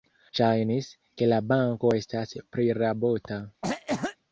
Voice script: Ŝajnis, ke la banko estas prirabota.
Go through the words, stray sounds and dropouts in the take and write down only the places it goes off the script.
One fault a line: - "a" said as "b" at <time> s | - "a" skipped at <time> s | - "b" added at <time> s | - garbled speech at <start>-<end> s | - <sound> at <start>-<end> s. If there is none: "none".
- cough at 3.6-4.2 s